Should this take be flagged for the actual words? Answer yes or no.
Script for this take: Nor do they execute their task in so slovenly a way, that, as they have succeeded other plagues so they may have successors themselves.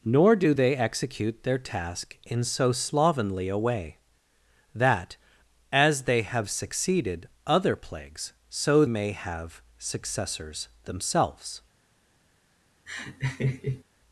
yes